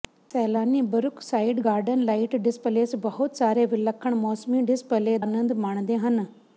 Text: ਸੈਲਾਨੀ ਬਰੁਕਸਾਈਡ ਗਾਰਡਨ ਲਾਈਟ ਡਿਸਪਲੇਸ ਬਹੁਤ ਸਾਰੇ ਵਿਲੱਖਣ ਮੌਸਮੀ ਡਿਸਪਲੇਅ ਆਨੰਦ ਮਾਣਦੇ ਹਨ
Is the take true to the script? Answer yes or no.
yes